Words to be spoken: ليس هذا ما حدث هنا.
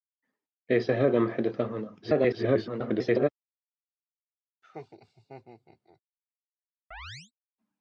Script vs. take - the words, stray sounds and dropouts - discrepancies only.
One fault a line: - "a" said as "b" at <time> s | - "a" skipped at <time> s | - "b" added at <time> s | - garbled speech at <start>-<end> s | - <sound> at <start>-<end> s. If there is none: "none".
- garbled speech at 2.0-3.3 s
- laugh at 4.6-6.0 s
- chirp at 6.9-7.3 s